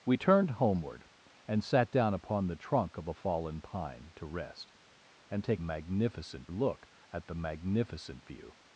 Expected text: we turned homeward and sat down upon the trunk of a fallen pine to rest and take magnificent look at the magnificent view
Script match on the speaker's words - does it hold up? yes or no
yes